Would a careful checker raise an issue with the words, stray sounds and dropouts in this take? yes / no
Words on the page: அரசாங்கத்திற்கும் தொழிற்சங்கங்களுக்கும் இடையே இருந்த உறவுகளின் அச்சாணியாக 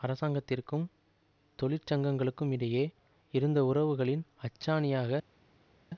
no